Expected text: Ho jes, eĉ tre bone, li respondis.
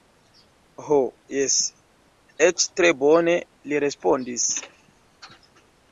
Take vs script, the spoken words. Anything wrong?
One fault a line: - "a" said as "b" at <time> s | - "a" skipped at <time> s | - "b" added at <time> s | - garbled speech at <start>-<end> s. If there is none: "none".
none